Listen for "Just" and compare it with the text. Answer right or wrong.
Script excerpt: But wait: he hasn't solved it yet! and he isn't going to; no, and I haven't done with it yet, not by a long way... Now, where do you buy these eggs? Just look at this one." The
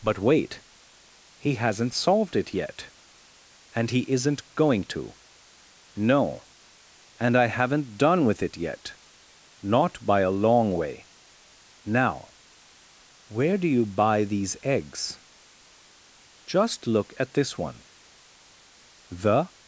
right